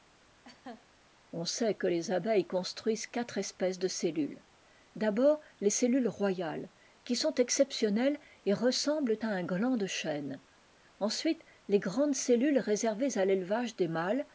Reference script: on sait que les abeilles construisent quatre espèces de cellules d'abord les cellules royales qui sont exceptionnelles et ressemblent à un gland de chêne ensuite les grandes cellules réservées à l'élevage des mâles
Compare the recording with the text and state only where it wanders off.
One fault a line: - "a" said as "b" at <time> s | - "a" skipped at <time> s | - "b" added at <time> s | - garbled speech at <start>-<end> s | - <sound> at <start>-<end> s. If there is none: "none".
- laugh at 0.4-0.9 s